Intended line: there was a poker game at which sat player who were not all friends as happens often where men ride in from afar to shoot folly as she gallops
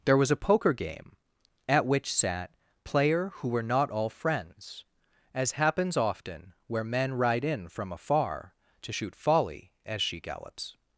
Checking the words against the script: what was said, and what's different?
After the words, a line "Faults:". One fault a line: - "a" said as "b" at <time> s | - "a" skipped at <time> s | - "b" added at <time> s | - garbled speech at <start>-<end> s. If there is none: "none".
there was a poker game at which sat player who were not all friends as happens often where men ride in from afar to shoot folly as she gallops
Faults:
none